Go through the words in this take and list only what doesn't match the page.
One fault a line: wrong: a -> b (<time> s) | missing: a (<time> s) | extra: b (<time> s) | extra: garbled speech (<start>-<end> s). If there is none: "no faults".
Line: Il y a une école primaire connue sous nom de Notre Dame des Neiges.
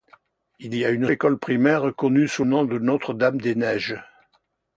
no faults